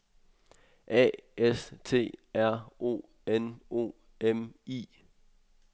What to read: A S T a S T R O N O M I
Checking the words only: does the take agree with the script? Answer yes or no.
no